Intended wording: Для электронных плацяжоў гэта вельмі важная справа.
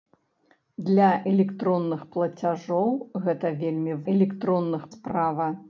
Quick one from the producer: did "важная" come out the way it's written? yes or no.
no